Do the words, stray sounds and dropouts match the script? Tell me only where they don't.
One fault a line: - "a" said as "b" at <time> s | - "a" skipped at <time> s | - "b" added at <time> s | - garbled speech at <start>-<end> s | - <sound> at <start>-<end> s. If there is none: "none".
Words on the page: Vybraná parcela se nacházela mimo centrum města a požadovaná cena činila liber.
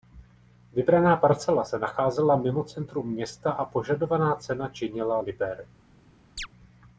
- chirp at 6.4-6.5 s